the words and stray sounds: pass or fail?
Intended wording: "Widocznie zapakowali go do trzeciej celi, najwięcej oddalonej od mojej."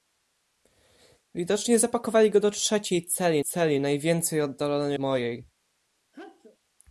fail